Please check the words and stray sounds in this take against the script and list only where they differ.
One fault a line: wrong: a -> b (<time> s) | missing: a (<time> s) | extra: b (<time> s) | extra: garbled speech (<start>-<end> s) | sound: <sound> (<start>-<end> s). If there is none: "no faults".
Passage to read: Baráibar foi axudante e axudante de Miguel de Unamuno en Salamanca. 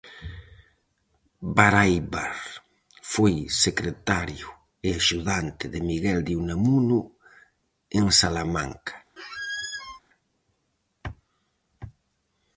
wrong: axudante -> secretario (3.6 s)
sound: squeak (9.2-10.0 s)